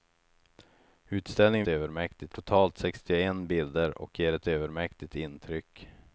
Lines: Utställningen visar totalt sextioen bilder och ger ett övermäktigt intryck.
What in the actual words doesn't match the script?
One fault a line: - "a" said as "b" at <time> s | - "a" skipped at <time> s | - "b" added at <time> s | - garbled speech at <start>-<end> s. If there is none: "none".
- "visar" said as "övermäktigt" at 1.7 s